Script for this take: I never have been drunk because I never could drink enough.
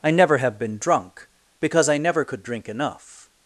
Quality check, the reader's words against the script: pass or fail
pass